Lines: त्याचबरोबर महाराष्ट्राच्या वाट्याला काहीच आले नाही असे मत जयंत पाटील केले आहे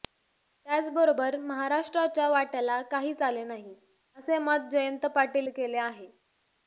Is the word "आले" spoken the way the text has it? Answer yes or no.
yes